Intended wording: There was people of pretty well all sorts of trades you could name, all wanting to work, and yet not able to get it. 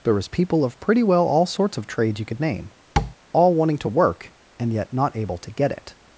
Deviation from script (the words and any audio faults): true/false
true